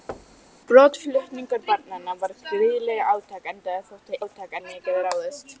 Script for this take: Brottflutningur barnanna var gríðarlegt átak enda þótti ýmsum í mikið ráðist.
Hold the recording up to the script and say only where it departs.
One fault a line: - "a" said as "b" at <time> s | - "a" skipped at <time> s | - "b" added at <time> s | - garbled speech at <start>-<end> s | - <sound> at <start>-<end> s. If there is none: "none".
- thud at 0.1-0.5 s
- "ýmsum" said as "átak" at 4.2 s